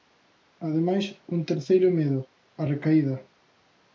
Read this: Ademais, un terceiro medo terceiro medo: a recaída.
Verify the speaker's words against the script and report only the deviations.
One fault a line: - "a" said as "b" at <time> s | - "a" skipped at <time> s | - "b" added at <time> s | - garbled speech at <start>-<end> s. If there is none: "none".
- "terceiro medo" skipped at 2.2 s